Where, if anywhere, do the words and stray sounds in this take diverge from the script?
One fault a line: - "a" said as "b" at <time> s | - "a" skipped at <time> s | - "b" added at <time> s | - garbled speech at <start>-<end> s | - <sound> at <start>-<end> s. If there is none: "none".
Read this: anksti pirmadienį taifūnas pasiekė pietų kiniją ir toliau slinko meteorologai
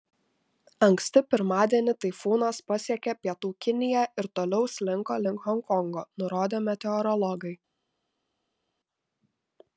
- "link honkongo nurodė" added at 5.2 s